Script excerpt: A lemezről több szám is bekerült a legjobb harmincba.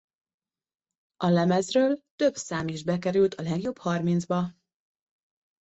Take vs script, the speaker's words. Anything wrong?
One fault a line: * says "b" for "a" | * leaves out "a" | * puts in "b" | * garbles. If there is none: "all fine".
all fine